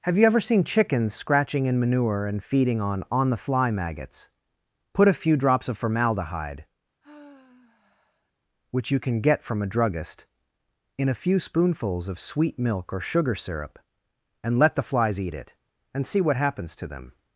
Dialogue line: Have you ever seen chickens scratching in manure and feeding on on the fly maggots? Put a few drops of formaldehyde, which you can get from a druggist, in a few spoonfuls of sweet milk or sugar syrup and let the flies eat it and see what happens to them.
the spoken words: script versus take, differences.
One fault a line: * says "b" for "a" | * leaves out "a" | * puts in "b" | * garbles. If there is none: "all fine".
all fine